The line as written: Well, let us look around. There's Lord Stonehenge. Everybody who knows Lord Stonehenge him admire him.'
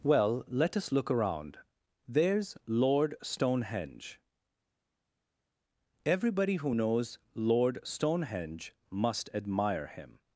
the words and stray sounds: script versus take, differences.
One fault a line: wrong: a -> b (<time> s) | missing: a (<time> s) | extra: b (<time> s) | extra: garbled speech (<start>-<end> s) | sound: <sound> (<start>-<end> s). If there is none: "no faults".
wrong: him -> must (8.9 s)